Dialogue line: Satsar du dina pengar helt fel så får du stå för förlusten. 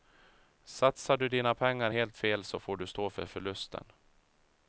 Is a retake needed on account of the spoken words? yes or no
no